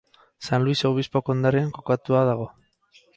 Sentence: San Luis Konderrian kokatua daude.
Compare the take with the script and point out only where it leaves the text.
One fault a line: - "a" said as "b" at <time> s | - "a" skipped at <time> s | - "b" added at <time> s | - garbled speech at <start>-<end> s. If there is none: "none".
- "Obispo" added at 0.9 s
- "daude" said as "dago" at 2.3 s